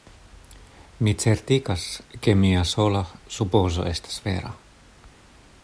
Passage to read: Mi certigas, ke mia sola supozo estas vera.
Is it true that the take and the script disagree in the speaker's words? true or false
false